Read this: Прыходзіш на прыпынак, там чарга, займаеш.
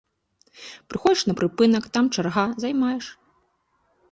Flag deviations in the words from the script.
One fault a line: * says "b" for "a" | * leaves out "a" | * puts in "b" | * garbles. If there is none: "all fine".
all fine